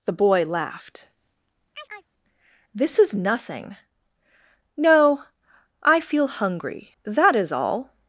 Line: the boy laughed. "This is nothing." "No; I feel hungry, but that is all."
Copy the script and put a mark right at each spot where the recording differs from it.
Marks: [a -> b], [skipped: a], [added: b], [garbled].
the boy laughed. "This is nothing." "No; I feel hungry, [skipped: but] that is all."